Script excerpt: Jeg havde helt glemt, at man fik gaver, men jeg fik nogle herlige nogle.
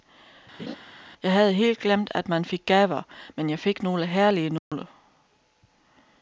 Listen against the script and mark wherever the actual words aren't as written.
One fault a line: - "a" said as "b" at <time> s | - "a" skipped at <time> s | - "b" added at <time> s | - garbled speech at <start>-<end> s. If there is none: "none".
none